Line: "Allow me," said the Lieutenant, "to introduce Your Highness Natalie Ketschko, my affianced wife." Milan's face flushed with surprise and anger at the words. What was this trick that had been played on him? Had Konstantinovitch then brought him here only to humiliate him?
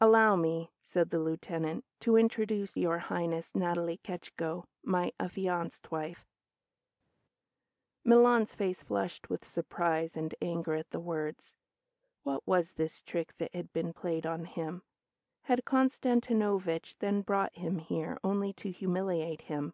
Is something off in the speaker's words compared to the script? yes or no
no